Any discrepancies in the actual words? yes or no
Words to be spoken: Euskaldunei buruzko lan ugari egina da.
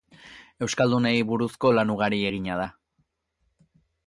no